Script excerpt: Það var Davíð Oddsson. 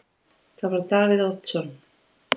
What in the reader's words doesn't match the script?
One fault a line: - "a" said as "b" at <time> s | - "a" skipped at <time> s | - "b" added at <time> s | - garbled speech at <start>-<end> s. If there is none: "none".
none